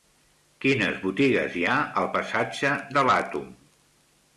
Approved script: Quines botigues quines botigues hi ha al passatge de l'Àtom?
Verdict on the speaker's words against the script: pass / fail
fail